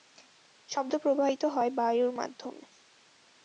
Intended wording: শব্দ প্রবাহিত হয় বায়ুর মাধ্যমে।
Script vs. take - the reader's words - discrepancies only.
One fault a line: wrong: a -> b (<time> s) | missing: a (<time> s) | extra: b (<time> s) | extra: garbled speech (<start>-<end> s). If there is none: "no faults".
no faults